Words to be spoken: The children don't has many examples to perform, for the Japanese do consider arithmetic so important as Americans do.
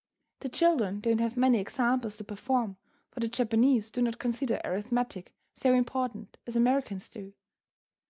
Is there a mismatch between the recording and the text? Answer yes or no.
yes